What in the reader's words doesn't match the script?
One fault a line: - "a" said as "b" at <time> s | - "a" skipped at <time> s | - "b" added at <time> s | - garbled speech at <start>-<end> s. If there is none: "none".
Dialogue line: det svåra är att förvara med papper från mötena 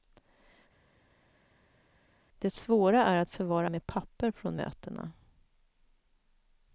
none